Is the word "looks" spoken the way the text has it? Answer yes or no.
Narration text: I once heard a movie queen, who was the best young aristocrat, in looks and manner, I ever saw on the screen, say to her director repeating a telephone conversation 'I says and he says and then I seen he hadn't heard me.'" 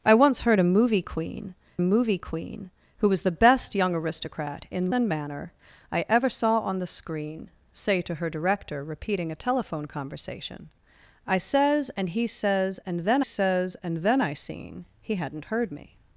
no